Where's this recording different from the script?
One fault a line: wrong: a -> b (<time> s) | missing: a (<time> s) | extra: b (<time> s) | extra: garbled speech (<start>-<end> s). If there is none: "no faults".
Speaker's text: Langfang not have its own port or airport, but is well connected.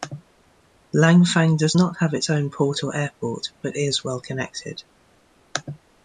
extra: does (1.6 s)